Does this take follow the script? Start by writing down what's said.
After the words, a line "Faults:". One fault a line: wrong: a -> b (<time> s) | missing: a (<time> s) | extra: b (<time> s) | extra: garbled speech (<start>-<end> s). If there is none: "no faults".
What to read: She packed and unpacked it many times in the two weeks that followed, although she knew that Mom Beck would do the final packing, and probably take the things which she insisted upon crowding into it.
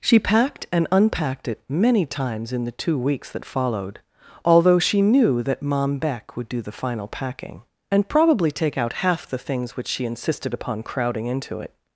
She packed and unpacked it many times in the two weeks that followed, although she knew that Mom Beck would do the final packing, and probably take out half the things which she insisted upon crowding into it.
Faults:
extra: out half (8.8 s)